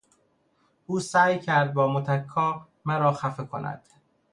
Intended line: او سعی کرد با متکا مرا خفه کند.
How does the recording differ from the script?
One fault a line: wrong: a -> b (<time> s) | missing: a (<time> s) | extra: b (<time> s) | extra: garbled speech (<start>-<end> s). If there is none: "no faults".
no faults